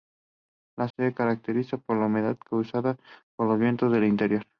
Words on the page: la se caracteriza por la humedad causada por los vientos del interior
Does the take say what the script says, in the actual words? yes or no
yes